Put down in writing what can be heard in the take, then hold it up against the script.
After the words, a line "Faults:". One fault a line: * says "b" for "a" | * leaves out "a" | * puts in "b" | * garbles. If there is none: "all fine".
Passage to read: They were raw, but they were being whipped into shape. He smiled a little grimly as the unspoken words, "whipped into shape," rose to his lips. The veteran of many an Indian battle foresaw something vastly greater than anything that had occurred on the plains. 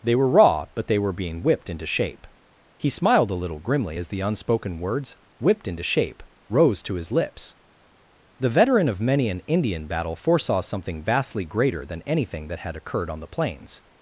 They were raw, but they were being whipped into shape. He smiled a little grimly as the unspoken words, "whipped into shape," rose to his lips. The veteran of many an Indian battle foresaw something vastly greater than anything that had occurred on the plains.
Faults:
all fine